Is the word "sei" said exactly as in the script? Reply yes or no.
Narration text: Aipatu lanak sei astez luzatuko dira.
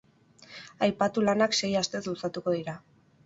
yes